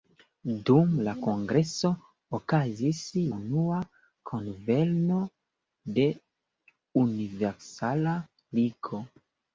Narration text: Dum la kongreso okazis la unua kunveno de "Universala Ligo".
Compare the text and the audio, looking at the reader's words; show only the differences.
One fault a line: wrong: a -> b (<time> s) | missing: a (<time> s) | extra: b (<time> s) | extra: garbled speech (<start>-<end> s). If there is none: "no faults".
missing: la (3.0 s)